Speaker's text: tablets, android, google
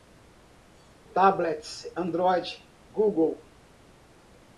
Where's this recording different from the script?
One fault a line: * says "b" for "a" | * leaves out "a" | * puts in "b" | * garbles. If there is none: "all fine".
all fine